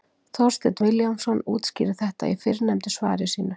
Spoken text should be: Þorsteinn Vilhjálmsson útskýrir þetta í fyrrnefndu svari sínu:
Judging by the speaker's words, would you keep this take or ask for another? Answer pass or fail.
pass